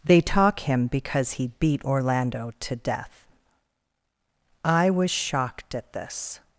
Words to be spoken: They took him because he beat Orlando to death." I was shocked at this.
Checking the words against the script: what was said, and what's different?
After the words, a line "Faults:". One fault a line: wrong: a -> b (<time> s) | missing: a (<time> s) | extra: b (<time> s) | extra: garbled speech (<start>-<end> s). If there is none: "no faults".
They talk him because he beat Orlando to death." I was shocked at this.
Faults:
wrong: took -> talk (0.2 s)